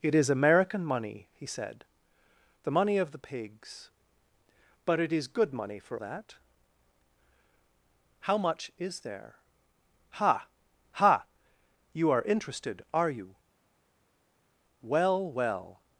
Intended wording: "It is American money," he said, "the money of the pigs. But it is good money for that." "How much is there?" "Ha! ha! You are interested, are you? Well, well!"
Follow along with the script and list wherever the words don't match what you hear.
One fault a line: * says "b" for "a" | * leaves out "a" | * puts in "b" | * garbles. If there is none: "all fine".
all fine